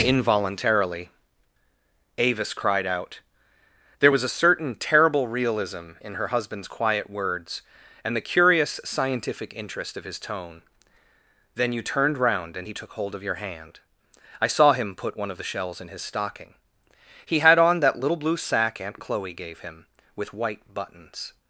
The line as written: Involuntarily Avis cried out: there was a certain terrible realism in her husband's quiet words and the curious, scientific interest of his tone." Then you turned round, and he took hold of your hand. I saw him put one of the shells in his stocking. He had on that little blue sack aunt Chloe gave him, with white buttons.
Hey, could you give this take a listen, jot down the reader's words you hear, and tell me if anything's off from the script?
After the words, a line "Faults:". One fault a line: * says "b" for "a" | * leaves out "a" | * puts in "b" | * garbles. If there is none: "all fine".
Involuntarily Avis cried out: there was a certain terrible realism in her husband's quiet words and the curious, scientific interest of his tone." Then you turned round, and he took hold of your hand. I saw him put one of the shells in his stocking. He had on that little blue sack aunt Chloe gave him, with white buttons.
Faults:
all fine